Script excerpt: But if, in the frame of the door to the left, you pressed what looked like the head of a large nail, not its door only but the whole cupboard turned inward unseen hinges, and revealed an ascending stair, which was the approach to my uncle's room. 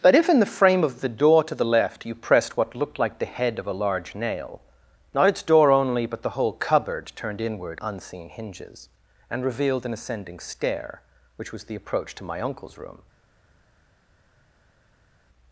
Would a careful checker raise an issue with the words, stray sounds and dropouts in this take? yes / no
no